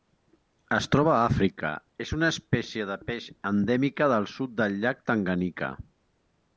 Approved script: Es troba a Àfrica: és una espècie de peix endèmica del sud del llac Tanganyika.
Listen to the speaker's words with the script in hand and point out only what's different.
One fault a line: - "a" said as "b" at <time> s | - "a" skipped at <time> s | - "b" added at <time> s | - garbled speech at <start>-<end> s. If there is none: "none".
none